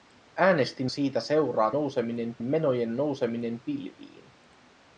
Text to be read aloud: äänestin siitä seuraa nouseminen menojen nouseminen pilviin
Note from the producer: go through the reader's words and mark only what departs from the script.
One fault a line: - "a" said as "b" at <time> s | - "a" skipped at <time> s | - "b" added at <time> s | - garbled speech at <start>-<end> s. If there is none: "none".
none